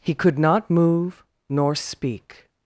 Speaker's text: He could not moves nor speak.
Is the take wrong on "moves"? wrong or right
wrong